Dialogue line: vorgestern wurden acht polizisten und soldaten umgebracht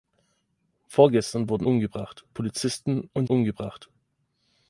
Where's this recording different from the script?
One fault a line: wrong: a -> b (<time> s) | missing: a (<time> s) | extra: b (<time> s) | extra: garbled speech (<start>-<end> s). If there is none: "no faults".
wrong: acht -> umgebracht (1.6 s)
missing: soldaten (3.3 s)